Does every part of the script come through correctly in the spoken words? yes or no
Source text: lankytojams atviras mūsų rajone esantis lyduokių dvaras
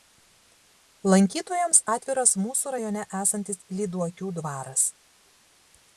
yes